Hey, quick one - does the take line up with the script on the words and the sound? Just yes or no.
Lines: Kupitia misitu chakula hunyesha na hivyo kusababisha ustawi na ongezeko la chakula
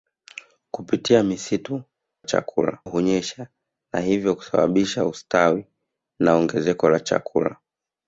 yes